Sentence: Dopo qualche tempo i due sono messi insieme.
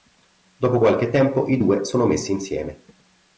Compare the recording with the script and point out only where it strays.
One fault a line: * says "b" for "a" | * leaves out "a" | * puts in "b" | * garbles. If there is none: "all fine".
all fine